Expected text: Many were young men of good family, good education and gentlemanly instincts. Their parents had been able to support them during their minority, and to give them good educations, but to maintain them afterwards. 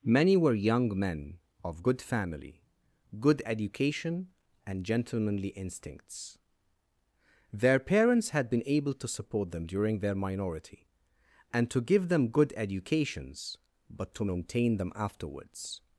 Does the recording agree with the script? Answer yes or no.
yes